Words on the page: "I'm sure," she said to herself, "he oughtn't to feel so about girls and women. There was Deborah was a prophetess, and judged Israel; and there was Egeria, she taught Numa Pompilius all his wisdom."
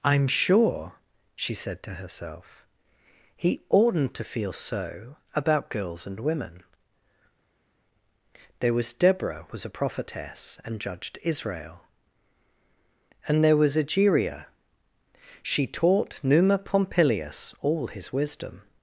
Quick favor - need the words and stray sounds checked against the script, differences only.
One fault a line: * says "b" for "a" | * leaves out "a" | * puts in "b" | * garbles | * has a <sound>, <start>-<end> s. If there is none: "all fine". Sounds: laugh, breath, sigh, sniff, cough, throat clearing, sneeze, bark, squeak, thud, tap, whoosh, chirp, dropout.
all fine